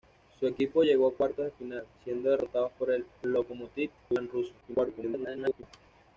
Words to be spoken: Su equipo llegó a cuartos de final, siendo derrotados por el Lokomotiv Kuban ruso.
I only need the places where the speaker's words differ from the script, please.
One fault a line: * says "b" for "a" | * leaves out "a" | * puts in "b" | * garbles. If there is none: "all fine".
* garbles